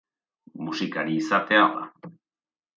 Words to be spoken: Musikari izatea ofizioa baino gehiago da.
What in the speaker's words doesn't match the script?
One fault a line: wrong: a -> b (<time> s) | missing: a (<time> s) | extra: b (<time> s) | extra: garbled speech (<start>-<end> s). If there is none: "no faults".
missing: ofizioa baino gehiago (1.7 s)